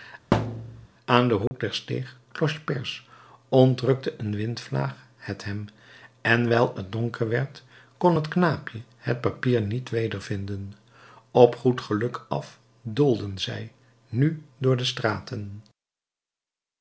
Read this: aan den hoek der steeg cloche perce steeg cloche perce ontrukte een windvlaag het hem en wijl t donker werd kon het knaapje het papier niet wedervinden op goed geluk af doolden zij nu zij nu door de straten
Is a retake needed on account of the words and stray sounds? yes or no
yes